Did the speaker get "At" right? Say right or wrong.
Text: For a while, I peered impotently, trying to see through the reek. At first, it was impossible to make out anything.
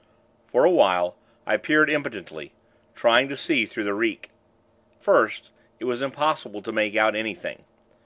wrong